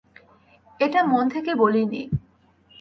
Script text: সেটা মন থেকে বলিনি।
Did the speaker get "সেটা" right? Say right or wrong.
wrong